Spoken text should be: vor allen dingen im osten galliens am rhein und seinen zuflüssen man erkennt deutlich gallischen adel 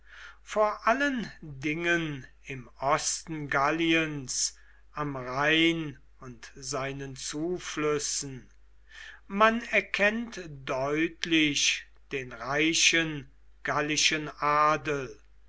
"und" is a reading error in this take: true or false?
false